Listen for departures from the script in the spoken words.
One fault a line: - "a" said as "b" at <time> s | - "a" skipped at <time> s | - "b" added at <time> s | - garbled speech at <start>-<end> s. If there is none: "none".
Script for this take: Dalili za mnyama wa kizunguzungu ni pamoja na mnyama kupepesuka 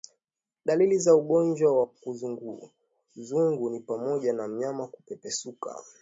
- "mnyama" said as "ugonjwa" at 1.1 s